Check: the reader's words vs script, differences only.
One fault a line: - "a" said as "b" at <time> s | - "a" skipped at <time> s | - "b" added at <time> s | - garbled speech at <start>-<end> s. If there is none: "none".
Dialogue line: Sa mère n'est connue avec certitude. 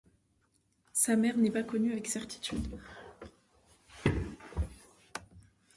- "pas" added at 1.5 s